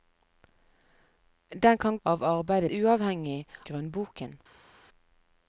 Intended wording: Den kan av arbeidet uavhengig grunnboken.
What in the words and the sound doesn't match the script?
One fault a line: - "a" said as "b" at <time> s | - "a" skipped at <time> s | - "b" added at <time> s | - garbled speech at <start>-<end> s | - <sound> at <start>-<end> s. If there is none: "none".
none